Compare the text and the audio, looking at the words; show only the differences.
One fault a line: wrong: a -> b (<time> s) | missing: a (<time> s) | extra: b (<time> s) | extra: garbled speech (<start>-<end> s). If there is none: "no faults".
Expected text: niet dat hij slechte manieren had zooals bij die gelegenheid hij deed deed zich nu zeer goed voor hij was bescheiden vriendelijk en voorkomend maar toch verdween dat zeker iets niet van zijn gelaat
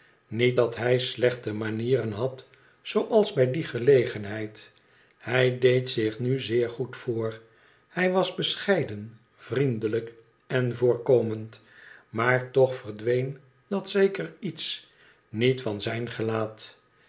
missing: deed (5.9 s)